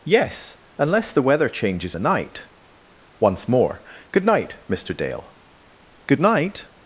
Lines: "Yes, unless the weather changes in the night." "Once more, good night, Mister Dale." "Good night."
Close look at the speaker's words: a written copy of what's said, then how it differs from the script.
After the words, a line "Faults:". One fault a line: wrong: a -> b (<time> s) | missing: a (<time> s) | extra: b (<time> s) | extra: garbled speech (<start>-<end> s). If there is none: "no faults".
"Yes, unless the weather changes the night." "Once more, good night, Mister Dale." "Good night."
Faults:
missing: in (1.9 s)